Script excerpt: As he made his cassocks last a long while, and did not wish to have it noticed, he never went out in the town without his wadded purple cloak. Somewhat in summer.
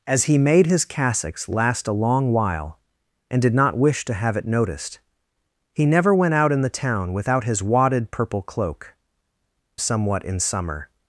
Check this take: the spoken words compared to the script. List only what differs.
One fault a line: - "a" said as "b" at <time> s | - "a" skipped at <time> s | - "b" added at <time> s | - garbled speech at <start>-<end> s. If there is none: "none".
none